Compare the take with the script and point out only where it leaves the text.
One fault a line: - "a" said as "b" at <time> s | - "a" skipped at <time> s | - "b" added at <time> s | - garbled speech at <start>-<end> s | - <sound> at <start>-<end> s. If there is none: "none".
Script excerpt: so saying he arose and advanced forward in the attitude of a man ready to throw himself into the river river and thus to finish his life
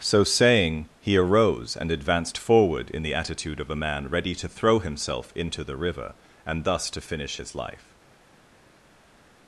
- "river" skipped at 6.1 s